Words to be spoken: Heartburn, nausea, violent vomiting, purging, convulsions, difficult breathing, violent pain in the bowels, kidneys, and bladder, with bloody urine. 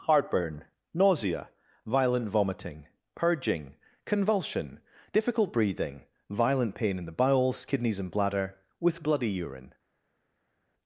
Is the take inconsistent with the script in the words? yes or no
yes